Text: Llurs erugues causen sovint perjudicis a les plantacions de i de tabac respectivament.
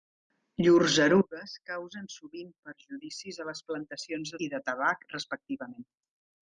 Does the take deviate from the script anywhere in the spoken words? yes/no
no